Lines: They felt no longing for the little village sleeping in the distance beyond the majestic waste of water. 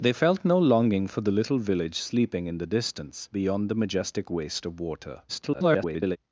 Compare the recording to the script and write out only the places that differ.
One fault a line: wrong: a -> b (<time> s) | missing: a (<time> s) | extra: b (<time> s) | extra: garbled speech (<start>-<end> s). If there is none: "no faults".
extra: garbled speech (5.3-6.2 s)